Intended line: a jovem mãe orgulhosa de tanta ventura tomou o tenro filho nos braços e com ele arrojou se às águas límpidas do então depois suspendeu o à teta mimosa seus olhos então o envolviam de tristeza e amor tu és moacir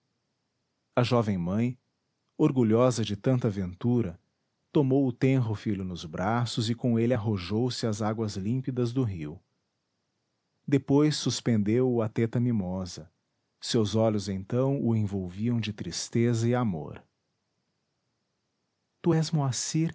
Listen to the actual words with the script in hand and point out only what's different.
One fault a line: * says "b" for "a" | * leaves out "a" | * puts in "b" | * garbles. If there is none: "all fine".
* says "rio" for "então"